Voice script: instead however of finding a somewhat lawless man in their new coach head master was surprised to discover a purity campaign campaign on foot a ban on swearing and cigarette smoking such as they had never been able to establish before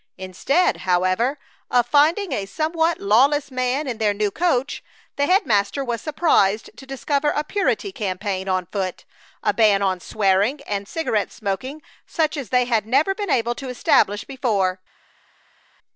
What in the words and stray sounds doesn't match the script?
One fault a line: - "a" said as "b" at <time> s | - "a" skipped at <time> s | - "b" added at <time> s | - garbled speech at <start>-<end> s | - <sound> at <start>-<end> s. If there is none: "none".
- "the" added at 5.2 s
- "campaign" skipped at 8.5 s